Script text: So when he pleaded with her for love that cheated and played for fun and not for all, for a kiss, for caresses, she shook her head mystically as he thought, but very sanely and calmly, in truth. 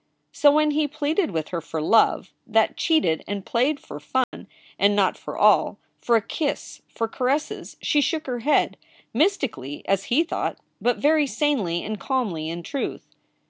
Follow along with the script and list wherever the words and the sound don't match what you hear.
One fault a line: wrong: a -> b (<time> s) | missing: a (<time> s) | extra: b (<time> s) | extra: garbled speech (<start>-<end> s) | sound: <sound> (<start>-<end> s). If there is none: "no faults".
sound: dropout (4.2-4.3 s)